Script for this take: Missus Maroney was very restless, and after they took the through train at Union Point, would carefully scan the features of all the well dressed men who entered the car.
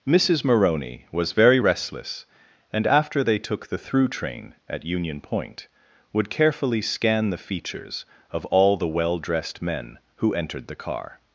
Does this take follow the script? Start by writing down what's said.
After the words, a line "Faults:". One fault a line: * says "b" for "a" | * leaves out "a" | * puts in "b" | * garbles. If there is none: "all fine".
Missus Maroney was very restless, and after they took the through train at Union Point, would carefully scan the features of all the well dressed men who entered the car.
Faults:
all fine